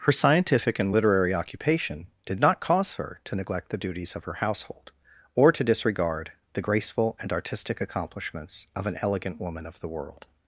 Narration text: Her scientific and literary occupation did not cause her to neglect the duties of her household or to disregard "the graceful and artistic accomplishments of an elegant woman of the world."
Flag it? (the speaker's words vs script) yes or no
no